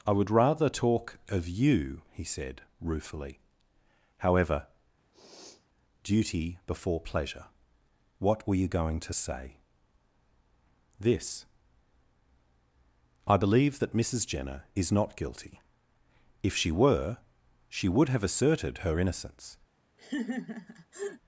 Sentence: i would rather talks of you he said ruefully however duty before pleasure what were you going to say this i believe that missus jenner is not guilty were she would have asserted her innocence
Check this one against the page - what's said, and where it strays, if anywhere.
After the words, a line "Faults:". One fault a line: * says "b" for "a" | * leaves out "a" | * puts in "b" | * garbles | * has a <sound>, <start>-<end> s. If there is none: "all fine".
i would rather talk of you he said ruefully however duty before pleasure what were you going to say this i believe that missus jenner is not guilty if she were she would have asserted her innocence
Faults:
* says "talk" for "talks"
* has a sniff, 5.1-5.7 s
* puts in "if she"
* has a laugh, 20.0-21.2 s